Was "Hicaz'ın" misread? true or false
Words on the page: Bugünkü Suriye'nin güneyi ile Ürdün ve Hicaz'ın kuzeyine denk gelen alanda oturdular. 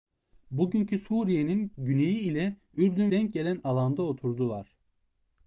true